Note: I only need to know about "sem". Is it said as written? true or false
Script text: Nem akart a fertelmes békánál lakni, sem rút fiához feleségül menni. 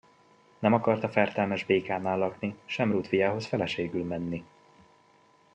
true